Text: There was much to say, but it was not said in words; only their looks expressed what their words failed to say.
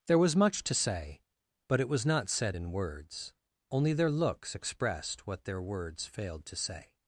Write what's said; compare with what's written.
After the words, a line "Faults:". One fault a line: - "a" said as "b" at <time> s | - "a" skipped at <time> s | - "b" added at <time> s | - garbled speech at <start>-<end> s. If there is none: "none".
There was much to say, but it was not said in words; only their looks expressed what their words failed to say.
Faults:
none